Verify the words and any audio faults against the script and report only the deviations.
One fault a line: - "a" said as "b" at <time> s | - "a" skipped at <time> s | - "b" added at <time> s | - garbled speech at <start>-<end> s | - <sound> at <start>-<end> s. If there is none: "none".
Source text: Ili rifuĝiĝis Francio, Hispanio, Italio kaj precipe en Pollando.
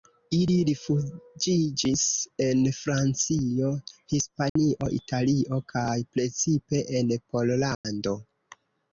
- "en" added at 2.5 s
- dropout at 4.5-4.6 s
- dropout at 7.7-7.8 s